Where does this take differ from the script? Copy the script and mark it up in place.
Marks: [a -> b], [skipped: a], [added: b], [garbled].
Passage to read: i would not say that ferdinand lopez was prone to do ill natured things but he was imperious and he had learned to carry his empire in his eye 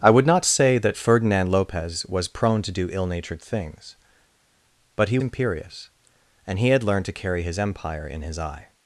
i would not say that ferdinand lopez was prone to do ill natured things but he [skipped: was] imperious and he had learned to carry his empire in his eye